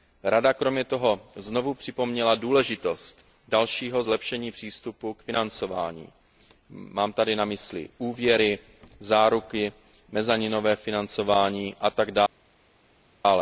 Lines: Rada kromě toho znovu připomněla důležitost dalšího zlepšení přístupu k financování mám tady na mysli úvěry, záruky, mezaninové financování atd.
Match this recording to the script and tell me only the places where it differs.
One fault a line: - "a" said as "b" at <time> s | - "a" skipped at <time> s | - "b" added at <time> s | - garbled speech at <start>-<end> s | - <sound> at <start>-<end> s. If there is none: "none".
none